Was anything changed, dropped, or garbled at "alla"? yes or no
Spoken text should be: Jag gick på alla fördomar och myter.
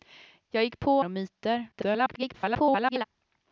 yes